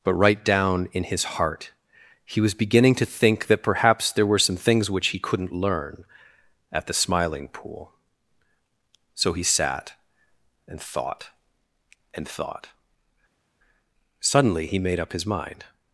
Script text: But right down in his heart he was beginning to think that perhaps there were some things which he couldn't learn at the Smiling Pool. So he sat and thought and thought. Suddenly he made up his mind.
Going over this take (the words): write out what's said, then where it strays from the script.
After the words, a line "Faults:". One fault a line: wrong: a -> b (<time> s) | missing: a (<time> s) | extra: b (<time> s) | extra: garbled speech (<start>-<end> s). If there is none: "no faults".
But right down in his heart he was beginning to think that perhaps there were some things which he couldn't learn at the Smiling Pool. So he sat and thought and thought. Suddenly he made up his mind.
Faults:
no faults